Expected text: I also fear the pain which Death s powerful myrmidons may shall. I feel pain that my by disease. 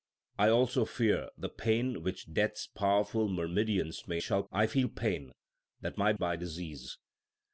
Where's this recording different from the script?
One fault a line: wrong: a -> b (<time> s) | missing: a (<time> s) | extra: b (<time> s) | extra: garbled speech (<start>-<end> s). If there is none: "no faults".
no faults